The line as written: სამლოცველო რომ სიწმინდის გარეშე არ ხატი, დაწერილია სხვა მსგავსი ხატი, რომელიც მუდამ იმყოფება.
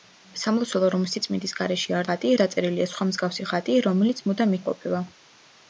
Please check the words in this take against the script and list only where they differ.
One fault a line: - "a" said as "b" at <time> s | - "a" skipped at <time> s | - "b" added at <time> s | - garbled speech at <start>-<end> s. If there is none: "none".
none